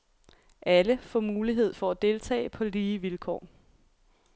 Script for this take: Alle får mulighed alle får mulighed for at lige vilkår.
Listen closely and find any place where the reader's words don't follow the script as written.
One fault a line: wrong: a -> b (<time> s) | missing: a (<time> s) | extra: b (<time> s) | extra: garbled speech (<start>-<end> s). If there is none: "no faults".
wrong: alle får mulighed for at -> for at deltage på (1.7 s)